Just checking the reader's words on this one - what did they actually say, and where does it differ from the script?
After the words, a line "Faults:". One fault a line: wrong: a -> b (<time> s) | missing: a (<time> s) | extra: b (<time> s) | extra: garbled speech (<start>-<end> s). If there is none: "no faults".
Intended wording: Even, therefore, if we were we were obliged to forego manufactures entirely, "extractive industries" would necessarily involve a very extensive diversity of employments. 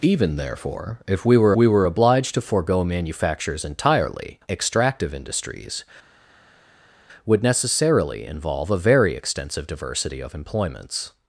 Even, therefore, if we were we were obliged to forego manufactures entirely, "extractive industries" would necessarily involve a very extensive diversity of employments.
Faults:
no faults